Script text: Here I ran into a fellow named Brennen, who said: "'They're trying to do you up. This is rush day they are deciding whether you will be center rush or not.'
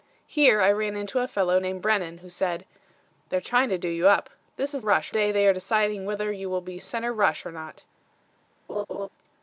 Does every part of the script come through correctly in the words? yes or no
yes